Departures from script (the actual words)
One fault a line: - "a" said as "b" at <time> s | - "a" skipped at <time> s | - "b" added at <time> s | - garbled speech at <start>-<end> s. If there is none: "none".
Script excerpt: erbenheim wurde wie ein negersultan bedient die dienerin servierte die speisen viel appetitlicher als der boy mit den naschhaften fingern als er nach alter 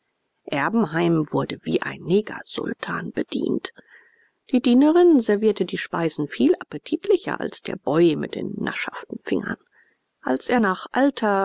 none